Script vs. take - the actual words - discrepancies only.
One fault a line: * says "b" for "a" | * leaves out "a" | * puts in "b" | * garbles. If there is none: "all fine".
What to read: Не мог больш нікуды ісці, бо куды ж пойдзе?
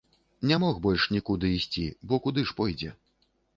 all fine